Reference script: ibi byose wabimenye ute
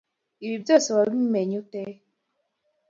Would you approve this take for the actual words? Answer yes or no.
yes